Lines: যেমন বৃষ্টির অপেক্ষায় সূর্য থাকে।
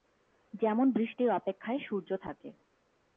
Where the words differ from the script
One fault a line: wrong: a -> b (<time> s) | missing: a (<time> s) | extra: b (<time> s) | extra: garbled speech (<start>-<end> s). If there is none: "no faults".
no faults